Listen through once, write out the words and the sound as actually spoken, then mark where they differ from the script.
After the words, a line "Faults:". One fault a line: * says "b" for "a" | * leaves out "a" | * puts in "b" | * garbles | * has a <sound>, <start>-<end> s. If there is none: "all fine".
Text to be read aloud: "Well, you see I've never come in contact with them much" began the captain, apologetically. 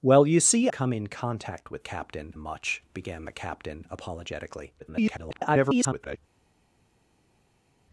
"Well, you see Come in contact with captain much" began the captain, apologetically. [garbled]
Faults:
* leaves out "I've never"
* says "captain" for "them"
* garbles